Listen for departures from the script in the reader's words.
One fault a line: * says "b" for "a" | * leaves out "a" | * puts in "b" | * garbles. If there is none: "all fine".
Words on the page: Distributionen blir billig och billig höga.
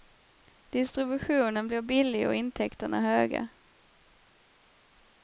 * says "intäkterna" for "billig"